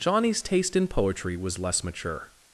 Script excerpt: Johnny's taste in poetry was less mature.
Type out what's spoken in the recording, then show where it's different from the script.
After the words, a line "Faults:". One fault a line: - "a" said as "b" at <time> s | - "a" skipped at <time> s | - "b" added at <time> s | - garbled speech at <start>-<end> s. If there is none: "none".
Johnny's taste in poetry was less mature.
Faults:
none